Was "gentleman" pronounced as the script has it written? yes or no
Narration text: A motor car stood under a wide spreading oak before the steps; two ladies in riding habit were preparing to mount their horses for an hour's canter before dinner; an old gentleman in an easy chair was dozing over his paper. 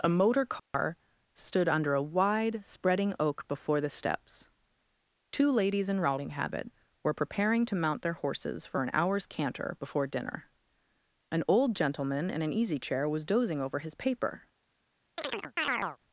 yes